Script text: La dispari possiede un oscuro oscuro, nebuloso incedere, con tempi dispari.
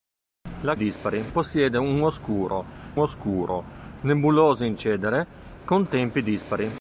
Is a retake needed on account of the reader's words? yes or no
no